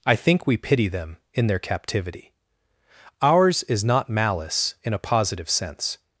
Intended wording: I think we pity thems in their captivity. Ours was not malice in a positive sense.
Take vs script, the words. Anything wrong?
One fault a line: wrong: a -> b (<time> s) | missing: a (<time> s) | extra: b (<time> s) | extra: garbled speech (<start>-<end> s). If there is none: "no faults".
wrong: thems -> them (0.9 s)
wrong: was -> is (3.6 s)